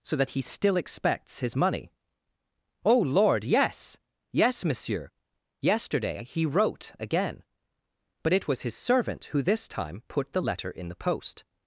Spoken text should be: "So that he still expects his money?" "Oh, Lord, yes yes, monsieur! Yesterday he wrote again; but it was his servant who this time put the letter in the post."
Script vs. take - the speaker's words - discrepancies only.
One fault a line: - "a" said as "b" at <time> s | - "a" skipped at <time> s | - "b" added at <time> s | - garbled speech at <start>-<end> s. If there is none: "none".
none